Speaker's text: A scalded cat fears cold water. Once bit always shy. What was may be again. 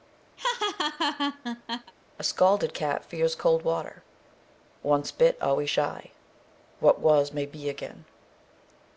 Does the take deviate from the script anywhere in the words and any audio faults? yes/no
yes